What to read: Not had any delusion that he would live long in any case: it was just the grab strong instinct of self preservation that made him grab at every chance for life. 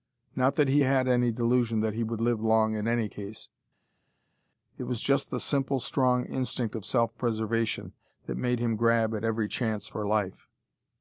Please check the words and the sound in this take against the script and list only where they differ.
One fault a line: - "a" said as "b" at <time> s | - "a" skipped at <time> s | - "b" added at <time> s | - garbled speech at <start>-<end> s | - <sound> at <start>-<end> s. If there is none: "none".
- "that he" added at 0.6 s
- "grab" said as "simple" at 5.4 s